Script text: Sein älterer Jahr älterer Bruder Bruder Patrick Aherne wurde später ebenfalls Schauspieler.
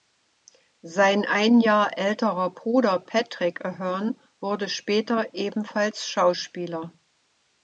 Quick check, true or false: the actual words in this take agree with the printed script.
false